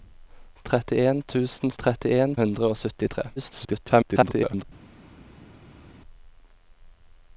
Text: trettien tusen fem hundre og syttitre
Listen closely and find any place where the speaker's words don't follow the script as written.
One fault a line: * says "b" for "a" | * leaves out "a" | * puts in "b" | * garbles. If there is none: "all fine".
* says "trettien" for "fem"
* garbles